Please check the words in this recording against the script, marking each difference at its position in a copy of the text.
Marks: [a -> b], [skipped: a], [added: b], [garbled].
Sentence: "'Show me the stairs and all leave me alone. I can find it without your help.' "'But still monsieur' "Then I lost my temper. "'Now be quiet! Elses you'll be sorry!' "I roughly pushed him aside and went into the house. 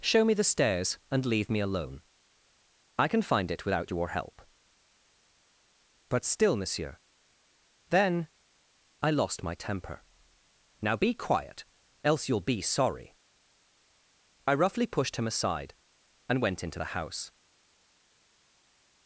"'Show me the stairs and [skipped: all] leave me alone. I can find it without your help.' "'But still monsieur' "Then I lost my temper. "'Now be quiet! [Elses -> Else] you'll be sorry!' "I roughly pushed him aside and went into the house.